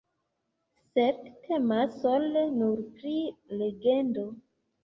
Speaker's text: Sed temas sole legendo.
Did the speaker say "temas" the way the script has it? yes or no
yes